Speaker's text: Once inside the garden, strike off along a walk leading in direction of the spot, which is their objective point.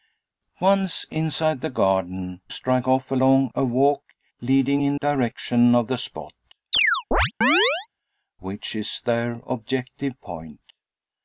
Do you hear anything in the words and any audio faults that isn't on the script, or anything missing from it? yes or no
yes